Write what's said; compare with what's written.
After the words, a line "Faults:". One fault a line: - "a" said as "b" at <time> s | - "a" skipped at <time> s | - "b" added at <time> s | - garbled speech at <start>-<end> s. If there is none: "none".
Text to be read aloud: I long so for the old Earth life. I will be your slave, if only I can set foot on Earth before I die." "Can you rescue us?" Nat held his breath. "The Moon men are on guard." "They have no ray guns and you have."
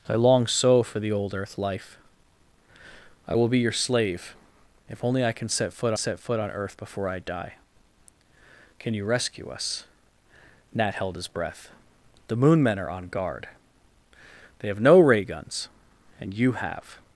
I long so for the old Earth life. I will be your slave, if only I can set foot set foot on Earth before I die." "Can you rescue us?" Nat held his breath. "The Moon men are on guard." "They have no ray guns and you have."
Faults:
- "set foot" added at 5.9 s